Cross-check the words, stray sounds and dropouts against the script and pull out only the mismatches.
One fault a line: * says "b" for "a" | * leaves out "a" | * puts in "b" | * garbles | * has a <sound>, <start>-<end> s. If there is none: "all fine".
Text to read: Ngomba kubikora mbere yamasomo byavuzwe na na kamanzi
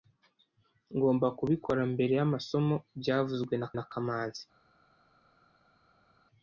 all fine